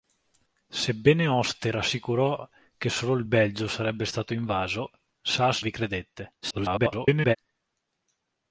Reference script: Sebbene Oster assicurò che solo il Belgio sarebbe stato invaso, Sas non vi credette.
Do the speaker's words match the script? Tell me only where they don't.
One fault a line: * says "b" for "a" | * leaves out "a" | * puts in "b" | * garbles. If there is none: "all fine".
* leaves out "non"
* garbles